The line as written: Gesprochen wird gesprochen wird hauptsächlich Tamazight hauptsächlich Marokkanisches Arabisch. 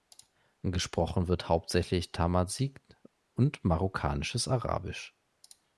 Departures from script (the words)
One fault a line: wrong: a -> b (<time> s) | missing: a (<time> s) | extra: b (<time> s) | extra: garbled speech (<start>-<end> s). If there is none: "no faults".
missing: gesprochen wird (1.5 s)
wrong: hauptsächlich -> und (3.4 s)